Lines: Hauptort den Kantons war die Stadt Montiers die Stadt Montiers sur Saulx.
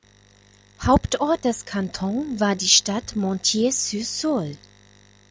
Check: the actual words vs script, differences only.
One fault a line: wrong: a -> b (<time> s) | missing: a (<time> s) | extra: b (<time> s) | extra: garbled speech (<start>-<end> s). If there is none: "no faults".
wrong: den -> des (1.4 s)
missing: die Stadt Montiers (3.7 s)